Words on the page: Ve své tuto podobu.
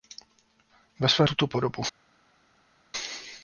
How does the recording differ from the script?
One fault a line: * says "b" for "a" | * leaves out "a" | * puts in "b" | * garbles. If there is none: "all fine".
all fine